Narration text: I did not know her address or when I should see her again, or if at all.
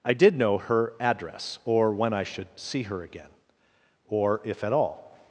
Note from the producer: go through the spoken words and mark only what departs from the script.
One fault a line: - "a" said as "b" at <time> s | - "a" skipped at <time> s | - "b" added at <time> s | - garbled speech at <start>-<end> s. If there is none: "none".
- "not" skipped at 0.3 s